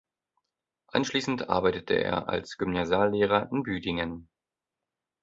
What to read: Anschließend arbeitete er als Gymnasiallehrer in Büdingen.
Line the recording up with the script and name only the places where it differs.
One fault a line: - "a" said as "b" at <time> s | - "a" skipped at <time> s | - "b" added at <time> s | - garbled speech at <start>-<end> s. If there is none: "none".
none